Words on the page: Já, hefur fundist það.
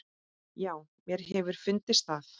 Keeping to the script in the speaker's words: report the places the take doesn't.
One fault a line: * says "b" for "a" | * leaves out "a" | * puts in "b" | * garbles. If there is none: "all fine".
* puts in "mér"